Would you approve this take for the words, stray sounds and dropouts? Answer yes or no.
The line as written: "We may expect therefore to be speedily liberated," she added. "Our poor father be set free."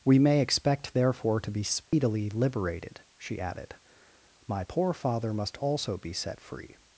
no